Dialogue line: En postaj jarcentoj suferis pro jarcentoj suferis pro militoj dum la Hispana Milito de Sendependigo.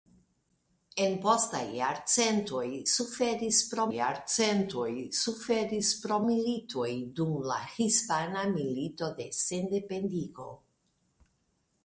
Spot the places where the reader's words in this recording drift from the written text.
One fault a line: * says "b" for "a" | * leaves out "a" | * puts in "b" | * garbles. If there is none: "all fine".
all fine